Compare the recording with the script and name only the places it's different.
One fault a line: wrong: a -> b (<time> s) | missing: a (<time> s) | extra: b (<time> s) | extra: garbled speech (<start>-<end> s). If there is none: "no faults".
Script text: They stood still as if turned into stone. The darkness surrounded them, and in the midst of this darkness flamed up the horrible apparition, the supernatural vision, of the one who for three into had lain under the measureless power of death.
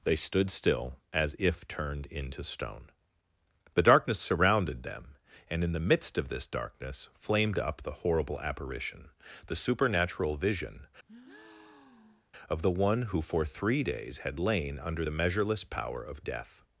wrong: into -> days (13.8 s)